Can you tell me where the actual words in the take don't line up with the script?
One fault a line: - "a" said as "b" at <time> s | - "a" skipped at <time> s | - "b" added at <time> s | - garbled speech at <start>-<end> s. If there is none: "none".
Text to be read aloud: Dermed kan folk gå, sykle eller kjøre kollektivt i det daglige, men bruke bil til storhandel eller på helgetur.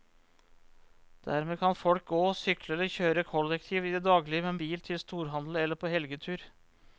- "bruke" skipped at 4.6 s